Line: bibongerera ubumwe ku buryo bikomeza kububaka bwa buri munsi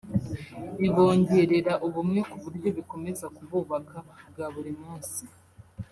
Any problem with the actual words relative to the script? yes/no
no